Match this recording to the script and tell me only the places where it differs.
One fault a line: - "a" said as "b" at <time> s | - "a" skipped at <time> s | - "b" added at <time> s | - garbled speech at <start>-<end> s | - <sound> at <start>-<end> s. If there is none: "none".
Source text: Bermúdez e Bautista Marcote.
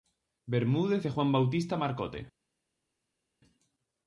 - "Juan" added at 1.1 s